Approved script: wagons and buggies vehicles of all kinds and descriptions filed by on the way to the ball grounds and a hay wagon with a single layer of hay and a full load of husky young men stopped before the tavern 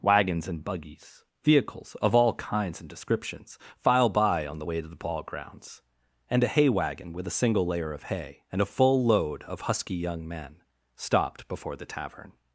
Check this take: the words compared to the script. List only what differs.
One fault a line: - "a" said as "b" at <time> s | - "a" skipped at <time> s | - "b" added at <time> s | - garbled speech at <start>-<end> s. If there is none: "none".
- "filed" said as "file" at 3.8 s